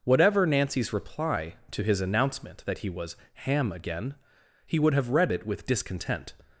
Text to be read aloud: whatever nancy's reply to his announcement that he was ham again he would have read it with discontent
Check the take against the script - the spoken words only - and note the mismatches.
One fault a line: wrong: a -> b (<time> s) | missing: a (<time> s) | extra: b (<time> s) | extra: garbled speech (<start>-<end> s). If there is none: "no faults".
no faults